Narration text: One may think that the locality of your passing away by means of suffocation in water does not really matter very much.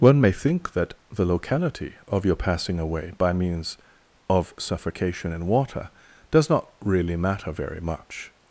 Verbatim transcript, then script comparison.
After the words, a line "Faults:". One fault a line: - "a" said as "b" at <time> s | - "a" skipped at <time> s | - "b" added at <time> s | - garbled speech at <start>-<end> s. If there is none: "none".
One may think that the locality of your passing away by means of suffocation in water does not really matter very much.
Faults:
none